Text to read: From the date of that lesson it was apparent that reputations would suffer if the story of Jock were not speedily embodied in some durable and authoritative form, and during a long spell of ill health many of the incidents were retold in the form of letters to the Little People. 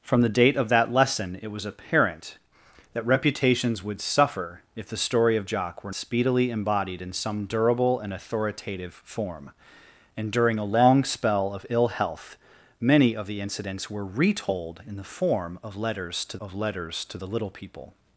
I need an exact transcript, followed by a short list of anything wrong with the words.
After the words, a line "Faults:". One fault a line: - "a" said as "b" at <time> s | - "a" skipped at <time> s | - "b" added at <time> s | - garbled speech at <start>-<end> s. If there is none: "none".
From the date of that lesson it was apparent that reputations would suffer if the story of Jock were speedily embodied in some durable and authoritative form, and during a long spell of ill health many of the incidents were retold in the form of letters to of letters to the Little People.
Faults:
- "not" skipped at 5.9 s
- "of letters to" added at 16.4 s